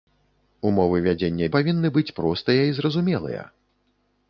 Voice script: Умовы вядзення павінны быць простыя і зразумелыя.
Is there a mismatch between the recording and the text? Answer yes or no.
no